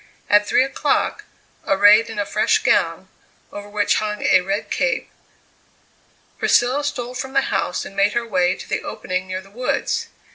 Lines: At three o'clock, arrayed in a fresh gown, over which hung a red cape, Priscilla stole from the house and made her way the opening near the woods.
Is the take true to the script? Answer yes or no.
no